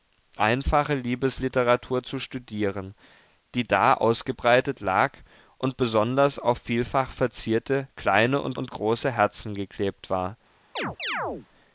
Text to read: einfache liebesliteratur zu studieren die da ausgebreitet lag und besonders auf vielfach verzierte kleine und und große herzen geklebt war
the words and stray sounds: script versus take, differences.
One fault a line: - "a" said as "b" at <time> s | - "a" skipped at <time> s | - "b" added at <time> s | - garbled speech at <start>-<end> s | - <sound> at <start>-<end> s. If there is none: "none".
- chirp at 10.8-11.5 s